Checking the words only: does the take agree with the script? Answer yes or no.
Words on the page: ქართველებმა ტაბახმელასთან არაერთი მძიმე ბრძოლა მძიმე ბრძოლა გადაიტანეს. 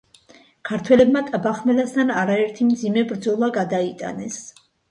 no